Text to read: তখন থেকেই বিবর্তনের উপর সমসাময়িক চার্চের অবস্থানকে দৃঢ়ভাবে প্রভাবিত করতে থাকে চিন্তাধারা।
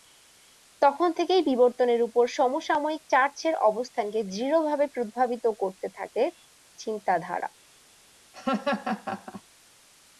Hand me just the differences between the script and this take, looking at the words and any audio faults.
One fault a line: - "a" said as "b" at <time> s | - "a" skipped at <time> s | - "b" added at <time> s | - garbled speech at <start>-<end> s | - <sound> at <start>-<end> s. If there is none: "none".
- laugh at 8.3-9.4 s